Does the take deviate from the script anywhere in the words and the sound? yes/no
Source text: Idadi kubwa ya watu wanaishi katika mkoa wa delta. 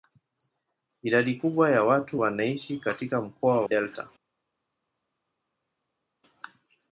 yes